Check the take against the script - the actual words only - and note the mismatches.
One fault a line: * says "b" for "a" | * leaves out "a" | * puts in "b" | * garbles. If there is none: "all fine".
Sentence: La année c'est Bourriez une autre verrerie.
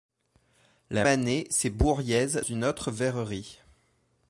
all fine